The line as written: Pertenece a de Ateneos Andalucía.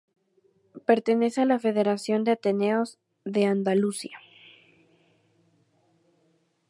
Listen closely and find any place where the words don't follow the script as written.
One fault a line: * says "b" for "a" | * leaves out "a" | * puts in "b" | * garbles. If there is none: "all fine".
* puts in "la Federación"
* puts in "de"